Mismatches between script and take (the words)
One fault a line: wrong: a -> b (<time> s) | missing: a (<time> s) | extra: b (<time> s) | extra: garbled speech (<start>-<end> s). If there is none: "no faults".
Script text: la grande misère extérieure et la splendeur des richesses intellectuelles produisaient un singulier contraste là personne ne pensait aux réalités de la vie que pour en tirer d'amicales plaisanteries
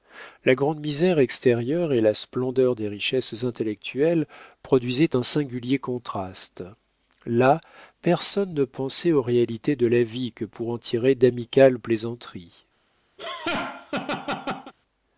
no faults